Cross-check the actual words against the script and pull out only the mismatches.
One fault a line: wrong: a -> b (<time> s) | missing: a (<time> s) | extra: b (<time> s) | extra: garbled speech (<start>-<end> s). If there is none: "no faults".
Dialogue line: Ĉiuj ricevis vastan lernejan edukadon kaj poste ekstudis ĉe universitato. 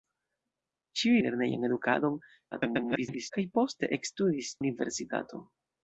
missing: ricevis vastan (1.2 s)
extra: garbled speech (2.5-3.3 s)
missing: ĉe (4.6 s)